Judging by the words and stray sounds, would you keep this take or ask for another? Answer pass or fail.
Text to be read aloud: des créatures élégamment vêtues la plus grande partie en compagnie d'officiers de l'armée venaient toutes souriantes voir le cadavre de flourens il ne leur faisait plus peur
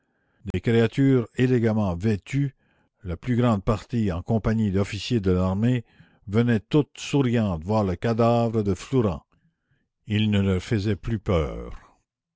fail